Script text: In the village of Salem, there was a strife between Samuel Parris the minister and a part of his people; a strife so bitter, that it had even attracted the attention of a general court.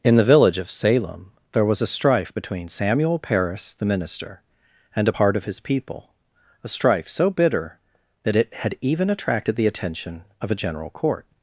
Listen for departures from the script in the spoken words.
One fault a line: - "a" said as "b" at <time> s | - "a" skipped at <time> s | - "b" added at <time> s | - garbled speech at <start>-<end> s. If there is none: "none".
none